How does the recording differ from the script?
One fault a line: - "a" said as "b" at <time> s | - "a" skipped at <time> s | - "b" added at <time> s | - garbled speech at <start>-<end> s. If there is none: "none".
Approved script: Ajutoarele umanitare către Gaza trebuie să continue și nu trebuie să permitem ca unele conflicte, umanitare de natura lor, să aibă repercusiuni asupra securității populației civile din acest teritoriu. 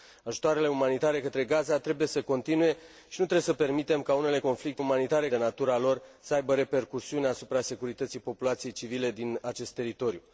none